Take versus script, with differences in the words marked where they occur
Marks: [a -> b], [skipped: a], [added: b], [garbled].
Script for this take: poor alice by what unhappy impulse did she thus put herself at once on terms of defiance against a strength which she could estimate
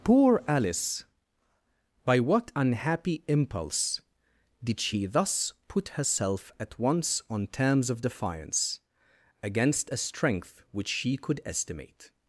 poor alice by what unhappy impulse did she thus put herself at once on terms of defiance against a strength which she could estimate